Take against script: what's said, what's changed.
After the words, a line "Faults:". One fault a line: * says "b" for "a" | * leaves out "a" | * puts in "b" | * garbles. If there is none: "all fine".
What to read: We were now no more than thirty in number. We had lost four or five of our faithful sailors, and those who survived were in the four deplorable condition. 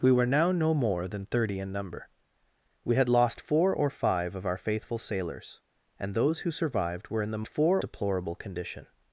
We were now no more than thirty in number. We had lost four or five of our faithful sailors, and those who survived were in the four deplorable condition.
Faults:
all fine